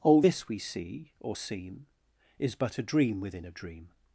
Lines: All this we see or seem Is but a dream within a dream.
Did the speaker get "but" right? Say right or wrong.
right